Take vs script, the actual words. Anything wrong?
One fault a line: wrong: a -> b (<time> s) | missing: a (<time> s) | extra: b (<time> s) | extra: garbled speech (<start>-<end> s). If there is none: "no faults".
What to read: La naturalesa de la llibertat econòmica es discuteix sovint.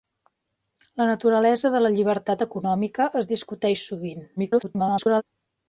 extra: garbled speech (4.4-5.2 s)